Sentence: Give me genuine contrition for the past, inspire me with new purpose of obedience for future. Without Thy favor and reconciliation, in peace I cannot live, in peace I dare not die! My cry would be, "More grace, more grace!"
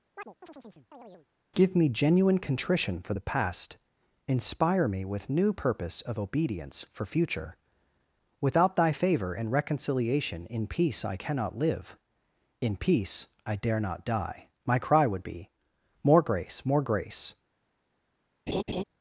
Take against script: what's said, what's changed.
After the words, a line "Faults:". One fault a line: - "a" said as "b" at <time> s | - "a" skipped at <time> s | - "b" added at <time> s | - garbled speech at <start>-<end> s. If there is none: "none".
Give me genuine contrition for the past, inspire me with new purpose of obedience for future. Without Thy favor and reconciliation, in peace I cannot live, in peace I dare not die! My cry would be, "More grace, more grace!"
Faults:
none